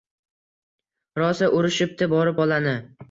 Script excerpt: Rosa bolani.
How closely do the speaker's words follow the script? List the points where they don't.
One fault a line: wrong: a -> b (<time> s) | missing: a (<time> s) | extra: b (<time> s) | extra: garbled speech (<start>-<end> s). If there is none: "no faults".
extra: urishibdi borib (1.6 s)